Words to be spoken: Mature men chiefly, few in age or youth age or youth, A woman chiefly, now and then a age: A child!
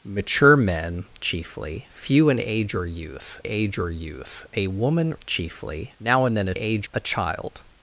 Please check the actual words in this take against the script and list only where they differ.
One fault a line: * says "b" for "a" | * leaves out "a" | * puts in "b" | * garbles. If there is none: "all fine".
all fine